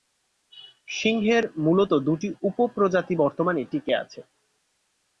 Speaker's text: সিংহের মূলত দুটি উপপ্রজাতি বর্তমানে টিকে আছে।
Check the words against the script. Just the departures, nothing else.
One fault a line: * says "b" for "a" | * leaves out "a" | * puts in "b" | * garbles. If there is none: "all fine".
all fine